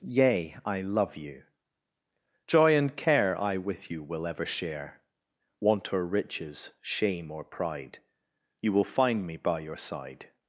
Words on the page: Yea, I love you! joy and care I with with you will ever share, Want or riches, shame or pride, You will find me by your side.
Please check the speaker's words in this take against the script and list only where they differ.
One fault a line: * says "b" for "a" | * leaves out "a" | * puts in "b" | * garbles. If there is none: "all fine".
* leaves out "with"